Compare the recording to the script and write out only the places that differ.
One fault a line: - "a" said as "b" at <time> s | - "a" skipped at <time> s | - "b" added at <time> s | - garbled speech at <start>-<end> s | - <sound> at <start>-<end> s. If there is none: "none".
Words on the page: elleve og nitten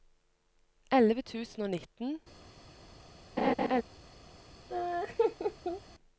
- "tusen" added at 1.3 s
- laugh at 3.4-3.8 s
- laugh at 4.7-5.8 s